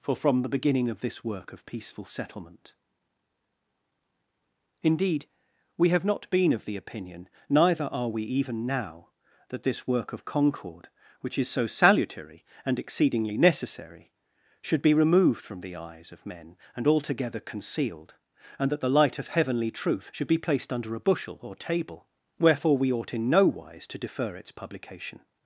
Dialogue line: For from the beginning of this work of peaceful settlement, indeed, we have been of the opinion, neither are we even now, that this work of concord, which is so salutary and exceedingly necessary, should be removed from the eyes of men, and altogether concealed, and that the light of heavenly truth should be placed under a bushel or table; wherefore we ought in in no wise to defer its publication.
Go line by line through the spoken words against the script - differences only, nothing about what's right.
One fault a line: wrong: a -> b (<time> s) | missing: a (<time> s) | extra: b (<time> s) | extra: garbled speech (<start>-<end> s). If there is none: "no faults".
extra: not (6.0 s)
missing: in (23.3 s)